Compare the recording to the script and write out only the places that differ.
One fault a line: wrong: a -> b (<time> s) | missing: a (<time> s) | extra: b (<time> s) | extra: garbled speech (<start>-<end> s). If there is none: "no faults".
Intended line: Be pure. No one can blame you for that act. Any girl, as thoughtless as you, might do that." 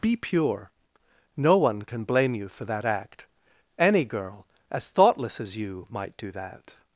no faults